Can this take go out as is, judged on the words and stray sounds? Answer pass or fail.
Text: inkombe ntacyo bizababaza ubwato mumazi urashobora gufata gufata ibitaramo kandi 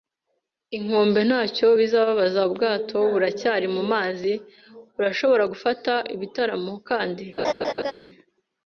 fail